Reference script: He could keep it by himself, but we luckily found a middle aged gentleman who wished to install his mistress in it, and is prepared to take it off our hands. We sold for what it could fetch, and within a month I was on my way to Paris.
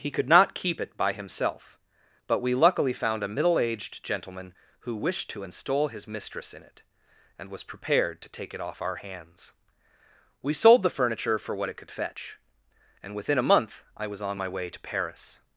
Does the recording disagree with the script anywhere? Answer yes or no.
yes